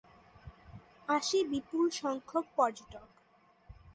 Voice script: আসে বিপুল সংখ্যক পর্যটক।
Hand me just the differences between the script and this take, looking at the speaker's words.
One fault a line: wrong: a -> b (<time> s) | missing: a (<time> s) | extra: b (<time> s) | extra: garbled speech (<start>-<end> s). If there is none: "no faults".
no faults